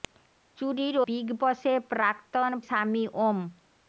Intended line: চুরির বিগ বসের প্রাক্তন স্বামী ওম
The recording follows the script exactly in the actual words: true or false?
true